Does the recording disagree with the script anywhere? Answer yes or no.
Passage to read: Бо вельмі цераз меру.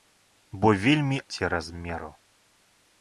no